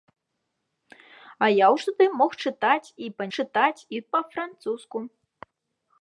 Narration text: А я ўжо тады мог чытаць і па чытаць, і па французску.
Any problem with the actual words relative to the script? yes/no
no